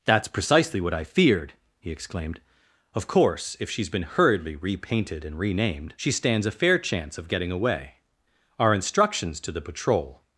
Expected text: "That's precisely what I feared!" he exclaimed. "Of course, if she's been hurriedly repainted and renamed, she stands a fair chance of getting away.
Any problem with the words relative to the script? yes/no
yes